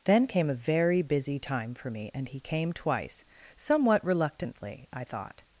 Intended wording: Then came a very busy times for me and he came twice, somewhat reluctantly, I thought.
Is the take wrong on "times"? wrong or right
wrong